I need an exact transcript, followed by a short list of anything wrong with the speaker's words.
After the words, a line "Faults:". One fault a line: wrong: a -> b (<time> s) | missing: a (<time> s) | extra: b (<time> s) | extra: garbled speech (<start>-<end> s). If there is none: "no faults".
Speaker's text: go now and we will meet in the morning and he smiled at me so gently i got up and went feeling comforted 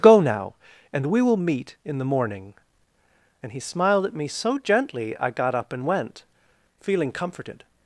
go now and we will meet in the morning and he smiled at me so gently i got up and went feeling comforted
Faults:
no faults